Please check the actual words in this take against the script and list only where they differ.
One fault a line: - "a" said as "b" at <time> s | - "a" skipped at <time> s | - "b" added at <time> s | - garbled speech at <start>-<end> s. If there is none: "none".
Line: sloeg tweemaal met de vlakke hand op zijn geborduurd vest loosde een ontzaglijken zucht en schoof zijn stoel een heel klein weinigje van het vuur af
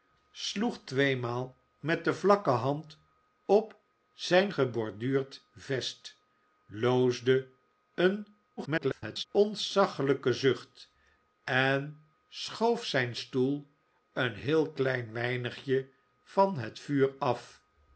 - garbled speech at 8.6-9.2 s